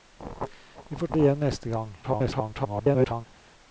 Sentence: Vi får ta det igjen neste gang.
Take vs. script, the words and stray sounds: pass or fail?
fail